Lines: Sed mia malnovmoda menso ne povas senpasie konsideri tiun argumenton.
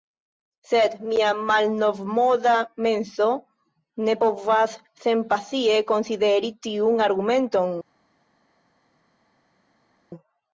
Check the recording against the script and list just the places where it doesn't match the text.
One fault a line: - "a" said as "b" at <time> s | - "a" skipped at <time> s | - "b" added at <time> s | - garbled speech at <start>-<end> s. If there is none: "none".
none